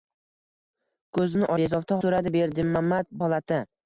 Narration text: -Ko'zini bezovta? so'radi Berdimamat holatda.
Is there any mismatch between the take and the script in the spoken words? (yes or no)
no